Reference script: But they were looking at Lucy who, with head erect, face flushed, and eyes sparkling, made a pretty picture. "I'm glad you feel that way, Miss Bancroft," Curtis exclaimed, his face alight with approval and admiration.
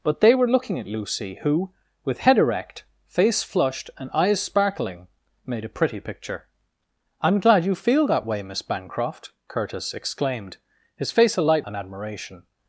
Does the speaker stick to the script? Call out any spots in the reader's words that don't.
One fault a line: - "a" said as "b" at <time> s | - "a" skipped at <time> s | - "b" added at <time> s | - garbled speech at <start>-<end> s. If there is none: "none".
- "with approval" skipped at 11.7 s